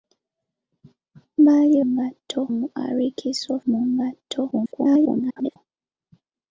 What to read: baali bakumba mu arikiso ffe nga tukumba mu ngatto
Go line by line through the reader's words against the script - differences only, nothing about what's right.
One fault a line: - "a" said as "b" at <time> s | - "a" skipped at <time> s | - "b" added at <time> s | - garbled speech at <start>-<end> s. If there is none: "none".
- "bakumba" said as "ngatto" at 1.9 s
- "ffe nga tukumba" skipped at 3.5 s
- garbled speech at 4.5-5.6 s